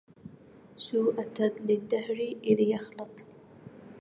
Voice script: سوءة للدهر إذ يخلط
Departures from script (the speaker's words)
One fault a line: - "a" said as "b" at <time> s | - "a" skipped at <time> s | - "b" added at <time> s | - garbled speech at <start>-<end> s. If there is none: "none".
none